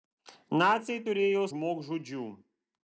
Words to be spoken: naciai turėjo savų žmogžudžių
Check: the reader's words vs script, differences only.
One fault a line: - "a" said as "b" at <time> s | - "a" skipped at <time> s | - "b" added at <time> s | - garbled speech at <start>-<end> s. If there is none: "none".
- "savų" skipped at 1.4 s